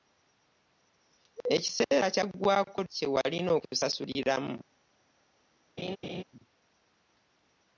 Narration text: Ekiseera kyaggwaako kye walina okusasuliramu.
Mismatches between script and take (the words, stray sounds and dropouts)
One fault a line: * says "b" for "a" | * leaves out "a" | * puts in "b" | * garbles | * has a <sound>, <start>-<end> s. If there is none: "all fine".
* has a laugh, 5.8-6.2 s